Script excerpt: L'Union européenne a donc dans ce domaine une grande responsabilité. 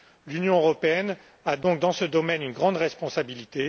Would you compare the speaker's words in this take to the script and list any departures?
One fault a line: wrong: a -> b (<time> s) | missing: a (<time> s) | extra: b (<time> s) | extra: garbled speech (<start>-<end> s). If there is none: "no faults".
no faults